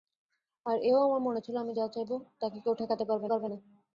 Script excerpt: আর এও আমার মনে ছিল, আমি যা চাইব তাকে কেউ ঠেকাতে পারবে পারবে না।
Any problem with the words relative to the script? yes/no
no